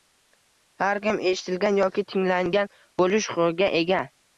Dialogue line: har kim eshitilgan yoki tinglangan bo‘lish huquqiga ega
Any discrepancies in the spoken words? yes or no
no